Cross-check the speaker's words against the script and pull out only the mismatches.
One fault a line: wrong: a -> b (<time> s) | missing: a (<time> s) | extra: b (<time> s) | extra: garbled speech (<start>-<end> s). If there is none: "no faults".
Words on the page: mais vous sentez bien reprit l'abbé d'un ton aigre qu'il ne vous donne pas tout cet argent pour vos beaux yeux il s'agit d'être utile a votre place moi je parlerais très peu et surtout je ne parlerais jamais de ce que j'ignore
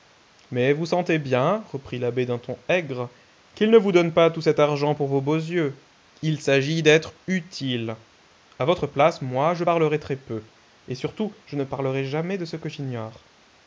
no faults